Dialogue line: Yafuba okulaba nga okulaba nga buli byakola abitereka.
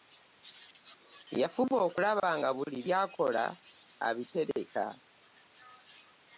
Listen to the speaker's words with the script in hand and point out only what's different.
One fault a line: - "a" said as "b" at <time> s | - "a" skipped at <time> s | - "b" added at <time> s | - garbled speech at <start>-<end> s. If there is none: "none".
- "okulaba nga" skipped at 2.5 s